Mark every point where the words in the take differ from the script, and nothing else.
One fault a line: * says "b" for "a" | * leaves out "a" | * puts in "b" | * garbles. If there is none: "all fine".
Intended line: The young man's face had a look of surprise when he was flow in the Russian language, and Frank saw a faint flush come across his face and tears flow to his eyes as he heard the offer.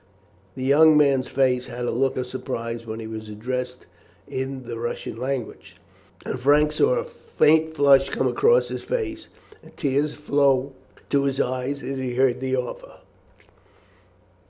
* says "addressed" for "flow"